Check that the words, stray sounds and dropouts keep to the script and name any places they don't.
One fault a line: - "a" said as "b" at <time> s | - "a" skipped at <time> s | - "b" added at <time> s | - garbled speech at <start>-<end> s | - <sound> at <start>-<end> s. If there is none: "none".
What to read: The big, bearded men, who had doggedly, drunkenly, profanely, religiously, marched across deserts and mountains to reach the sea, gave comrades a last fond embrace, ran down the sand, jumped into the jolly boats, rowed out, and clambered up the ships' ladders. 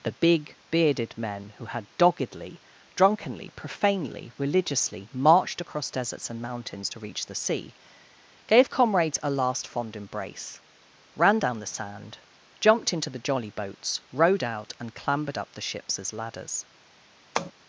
- "as" added at 16.0 s
- tap at 17.4-17.5 s